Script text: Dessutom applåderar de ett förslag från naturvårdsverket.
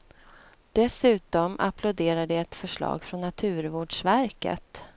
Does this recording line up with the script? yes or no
yes